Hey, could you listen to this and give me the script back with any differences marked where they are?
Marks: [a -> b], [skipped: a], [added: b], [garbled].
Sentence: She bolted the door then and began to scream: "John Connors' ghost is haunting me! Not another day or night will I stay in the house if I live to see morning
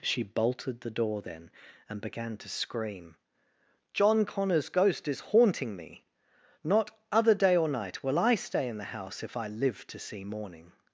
She bolted the door then and began to scream: "John Connors' ghost is haunting me! Not [another -> other] day or night will I stay in the house if I live to see morning